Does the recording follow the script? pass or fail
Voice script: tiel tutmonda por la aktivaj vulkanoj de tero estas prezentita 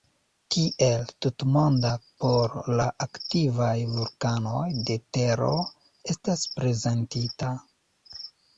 pass